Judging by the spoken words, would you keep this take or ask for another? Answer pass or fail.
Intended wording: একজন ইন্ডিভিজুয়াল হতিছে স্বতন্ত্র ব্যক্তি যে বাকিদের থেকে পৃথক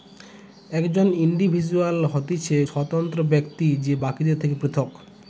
pass